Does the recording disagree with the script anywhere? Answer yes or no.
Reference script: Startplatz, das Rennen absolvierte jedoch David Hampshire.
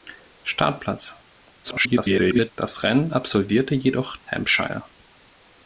yes